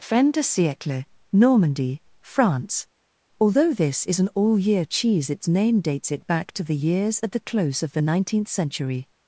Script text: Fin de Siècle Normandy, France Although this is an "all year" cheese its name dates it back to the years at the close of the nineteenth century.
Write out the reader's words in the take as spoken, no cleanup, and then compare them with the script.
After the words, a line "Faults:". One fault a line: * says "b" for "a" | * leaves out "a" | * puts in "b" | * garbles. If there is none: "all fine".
Fin de Siècle Normandy, France Although this is an "all year" cheese its name dates it back to the years at the close of the nineteenth century.
Faults:
all fine